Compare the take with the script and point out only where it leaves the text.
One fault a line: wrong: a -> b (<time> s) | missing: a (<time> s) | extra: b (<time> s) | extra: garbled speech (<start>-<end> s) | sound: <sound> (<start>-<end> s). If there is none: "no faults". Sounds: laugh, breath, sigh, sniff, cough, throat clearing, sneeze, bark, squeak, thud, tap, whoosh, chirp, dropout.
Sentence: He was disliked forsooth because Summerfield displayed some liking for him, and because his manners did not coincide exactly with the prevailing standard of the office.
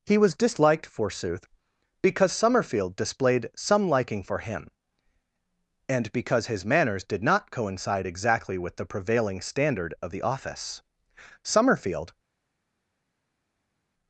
extra: Summerfield (11.4 s)